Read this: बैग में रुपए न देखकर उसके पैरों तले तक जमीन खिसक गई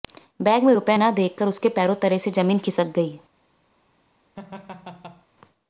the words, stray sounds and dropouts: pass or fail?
fail